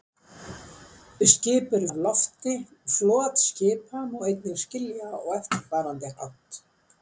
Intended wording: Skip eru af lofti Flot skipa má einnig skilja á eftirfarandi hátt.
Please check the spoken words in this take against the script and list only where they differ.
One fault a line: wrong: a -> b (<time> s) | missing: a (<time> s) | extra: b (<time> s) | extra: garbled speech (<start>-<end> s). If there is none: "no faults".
no faults